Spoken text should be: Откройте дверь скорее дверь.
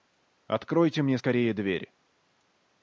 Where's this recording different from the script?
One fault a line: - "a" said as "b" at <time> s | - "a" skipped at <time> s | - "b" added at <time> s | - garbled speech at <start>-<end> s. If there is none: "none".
- "дверь" said as "мне" at 1.0 s